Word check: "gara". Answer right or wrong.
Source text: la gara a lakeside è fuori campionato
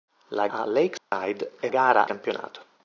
wrong